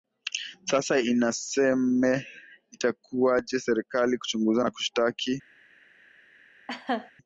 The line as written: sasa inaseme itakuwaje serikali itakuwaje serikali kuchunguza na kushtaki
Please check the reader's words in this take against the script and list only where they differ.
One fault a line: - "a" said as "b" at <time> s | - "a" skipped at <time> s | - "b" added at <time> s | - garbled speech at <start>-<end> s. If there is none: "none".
- "itakuwaje serikali" skipped at 4.2 s